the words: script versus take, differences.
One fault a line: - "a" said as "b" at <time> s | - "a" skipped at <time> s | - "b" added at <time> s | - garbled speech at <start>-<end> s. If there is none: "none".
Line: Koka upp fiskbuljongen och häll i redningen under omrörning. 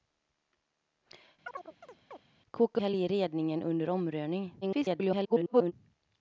- "upp fiskbuljongen och" skipped at 2.8 s
- garbled speech at 4.6-5.7 s